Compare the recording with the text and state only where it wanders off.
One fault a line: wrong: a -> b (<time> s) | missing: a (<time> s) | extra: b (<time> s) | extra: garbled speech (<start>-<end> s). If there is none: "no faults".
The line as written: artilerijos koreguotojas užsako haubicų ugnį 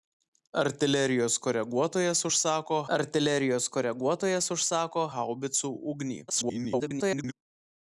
extra: artilerijos koreguotojas užsako (3.0 s)
extra: garbled speech (6.3-7.3 s)